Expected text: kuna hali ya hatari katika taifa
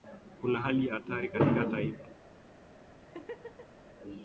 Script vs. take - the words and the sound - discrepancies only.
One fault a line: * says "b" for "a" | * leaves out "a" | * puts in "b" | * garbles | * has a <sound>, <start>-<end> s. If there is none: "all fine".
* has a laugh, 3.0-3.8 s